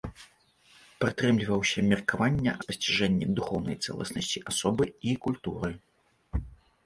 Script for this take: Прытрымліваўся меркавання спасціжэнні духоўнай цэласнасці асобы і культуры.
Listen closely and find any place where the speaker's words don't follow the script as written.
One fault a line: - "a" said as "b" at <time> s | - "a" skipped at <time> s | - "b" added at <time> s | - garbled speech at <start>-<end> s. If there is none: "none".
none